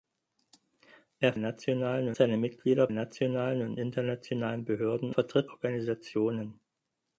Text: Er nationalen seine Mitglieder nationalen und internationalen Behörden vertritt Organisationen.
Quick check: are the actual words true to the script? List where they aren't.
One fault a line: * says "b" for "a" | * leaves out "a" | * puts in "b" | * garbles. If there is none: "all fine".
all fine